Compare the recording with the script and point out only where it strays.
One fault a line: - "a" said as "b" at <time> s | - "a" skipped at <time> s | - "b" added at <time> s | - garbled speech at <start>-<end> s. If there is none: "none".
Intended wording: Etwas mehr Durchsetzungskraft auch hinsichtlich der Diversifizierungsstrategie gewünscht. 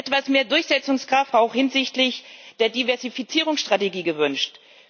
none